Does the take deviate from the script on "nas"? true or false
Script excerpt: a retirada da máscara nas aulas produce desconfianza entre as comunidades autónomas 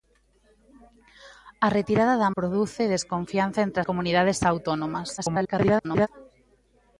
true